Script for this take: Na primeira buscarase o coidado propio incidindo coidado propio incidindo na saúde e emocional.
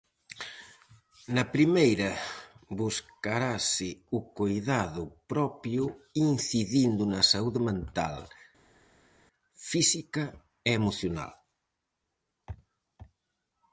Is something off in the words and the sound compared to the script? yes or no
yes